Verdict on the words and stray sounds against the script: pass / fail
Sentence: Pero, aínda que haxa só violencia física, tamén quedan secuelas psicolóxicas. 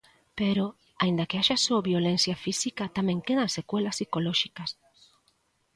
pass